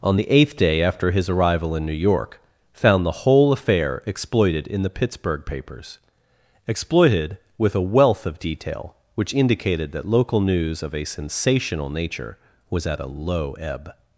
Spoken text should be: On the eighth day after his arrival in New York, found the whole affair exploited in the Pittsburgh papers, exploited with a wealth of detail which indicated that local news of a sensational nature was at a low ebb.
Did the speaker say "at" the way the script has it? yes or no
yes